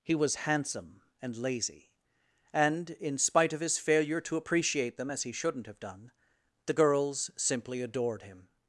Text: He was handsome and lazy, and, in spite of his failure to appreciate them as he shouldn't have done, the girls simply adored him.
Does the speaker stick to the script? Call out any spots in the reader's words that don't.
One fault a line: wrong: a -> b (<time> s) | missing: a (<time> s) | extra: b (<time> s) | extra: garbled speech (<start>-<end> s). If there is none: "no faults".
no faults